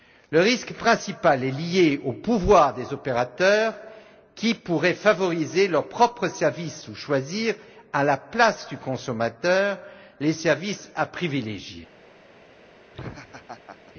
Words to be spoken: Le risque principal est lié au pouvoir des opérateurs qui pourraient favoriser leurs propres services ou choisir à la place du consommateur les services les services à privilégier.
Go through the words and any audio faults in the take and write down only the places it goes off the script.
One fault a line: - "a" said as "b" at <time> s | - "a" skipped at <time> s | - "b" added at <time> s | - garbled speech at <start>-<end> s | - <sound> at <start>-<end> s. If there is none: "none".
- "les services" skipped at 10.9 s
- laugh at 12.9-13.9 s